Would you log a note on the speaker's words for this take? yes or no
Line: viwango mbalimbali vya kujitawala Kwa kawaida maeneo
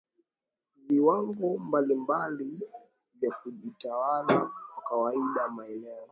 no